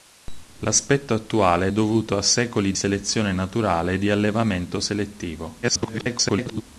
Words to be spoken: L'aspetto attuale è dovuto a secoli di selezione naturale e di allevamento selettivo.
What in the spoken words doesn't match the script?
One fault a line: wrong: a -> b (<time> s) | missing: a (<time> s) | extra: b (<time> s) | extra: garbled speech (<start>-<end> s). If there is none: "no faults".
missing: di (2.7 s)
extra: garbled speech (5.6-6.6 s)